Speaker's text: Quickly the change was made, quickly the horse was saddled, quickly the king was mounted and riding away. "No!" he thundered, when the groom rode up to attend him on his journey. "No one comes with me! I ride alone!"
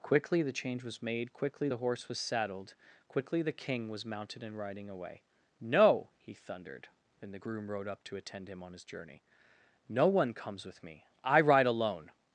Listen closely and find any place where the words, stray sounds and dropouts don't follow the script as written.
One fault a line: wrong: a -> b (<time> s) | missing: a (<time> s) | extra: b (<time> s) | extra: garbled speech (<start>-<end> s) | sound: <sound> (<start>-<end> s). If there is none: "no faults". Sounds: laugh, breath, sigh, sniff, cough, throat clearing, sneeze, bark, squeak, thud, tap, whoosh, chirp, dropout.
wrong: when -> and (7.2 s)